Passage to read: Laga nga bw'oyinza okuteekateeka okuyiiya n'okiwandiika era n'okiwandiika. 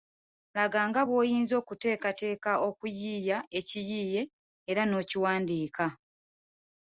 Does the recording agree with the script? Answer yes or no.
no